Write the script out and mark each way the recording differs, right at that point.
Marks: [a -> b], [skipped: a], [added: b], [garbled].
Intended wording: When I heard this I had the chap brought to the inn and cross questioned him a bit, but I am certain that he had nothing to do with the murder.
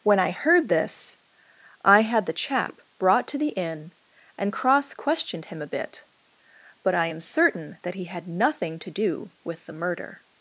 When I heard this I had the chap brought to the inn and cross questioned him a bit, but I am certain that he had nothing to do with the murder.